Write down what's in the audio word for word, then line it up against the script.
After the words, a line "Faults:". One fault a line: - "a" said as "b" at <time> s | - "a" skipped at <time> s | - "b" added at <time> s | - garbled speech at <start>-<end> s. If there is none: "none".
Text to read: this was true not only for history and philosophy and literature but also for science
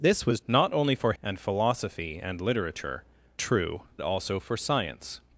this was not only for and philosophy and literature true also for science
Faults:
- "true" skipped at 0.4 s
- "history" skipped at 1.1 s
- "but" said as "true" at 3.3 s